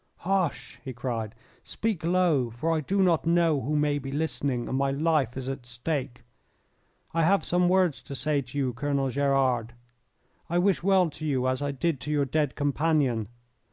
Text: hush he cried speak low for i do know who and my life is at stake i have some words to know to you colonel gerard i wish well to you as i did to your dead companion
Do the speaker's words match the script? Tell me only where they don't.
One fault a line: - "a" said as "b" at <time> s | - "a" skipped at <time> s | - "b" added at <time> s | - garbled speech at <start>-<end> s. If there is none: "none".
- "not" added at 3.0 s
- "may be listening" added at 3.8 s
- "know" said as "say" at 8.1 s